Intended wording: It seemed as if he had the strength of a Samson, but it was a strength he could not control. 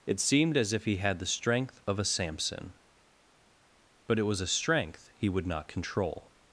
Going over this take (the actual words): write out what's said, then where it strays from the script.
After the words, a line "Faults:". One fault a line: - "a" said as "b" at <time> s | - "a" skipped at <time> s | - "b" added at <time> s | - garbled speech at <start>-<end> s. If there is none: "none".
It seemed as if he had the strength of a Samson, but it was a strength he would not control.
Faults:
- "could" said as "would" at 5.3 s